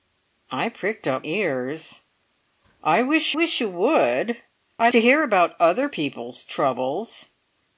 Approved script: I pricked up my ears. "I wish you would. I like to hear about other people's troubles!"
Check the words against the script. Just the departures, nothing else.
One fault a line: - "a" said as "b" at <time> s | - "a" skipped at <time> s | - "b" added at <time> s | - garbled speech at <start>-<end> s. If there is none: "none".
- "my" skipped at 1.3 s
- "wish" added at 3.3 s
- "like" skipped at 4.9 s